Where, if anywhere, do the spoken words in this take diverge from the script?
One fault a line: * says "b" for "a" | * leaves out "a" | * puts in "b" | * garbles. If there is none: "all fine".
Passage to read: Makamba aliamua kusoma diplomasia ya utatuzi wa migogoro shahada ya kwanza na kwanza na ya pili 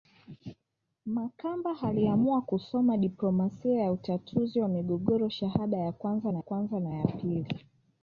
all fine